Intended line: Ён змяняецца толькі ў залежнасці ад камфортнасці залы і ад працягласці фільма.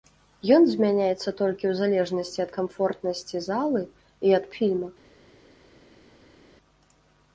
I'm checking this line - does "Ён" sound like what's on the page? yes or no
yes